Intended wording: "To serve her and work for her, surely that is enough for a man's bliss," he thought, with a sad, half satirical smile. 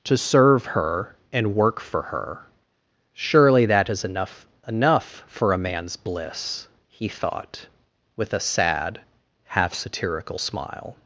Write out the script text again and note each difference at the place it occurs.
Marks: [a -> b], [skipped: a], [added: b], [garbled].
"To serve her and work for her, surely that is enough [added: enough] for a man's bliss," he thought, with a sad, half satirical smile.